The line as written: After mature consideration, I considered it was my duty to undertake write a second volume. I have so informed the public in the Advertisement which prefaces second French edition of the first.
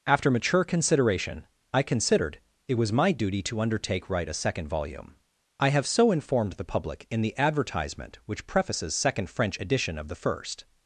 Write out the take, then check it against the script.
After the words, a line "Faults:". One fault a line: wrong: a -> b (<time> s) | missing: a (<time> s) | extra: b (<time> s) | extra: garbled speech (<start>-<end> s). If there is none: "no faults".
After mature consideration, I considered it was my duty to undertake write a second volume. I have so informed the public in the Advertisement which prefaces second French edition of the first.
Faults:
no faults